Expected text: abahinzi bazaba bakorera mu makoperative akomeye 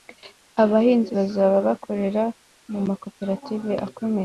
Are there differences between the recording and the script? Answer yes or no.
no